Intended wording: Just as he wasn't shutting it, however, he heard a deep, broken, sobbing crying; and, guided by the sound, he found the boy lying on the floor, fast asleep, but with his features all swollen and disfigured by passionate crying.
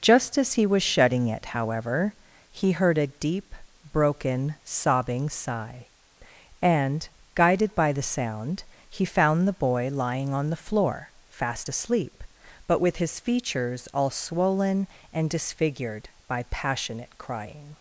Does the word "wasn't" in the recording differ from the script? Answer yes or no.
yes